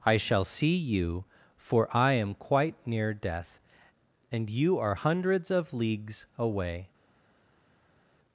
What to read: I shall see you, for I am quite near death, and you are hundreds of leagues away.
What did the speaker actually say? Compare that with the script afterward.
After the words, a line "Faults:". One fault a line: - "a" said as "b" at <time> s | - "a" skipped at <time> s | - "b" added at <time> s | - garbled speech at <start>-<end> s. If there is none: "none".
I shall see you, for I am quite near death, and you are hundreds of leagues away.
Faults:
none